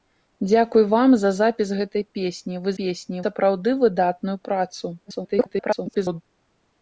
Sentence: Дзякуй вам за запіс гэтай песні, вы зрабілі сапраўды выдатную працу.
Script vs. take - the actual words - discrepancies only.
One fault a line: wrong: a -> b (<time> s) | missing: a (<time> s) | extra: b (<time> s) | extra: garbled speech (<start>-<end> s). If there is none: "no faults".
wrong: зрабілі -> песні (2.8 s)
extra: garbled speech (5.0-6.2 s)